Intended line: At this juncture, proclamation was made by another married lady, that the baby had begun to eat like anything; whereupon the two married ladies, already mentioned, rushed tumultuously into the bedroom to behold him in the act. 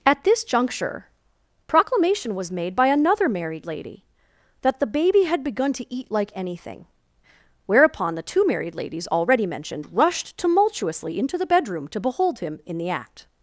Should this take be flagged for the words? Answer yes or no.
no